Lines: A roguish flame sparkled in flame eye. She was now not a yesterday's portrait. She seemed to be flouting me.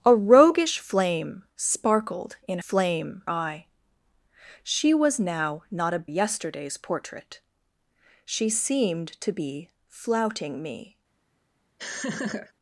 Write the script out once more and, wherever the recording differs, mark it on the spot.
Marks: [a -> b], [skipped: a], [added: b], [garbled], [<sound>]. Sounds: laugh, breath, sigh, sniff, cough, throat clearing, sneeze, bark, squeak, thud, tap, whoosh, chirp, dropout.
A roguish flame sparkled in flame eye. She was now not a yesterday's portrait. She seemed to be flouting me. [laugh]